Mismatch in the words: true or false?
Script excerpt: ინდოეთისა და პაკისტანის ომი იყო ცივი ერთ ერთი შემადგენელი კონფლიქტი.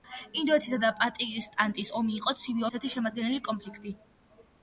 false